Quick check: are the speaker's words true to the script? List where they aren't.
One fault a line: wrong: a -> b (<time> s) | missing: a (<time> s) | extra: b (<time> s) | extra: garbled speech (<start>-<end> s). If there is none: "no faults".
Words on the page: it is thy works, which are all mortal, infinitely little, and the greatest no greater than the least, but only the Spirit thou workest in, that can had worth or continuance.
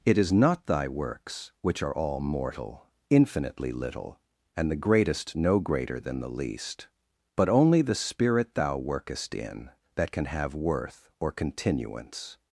extra: not (0.3 s)
wrong: had -> have (10.2 s)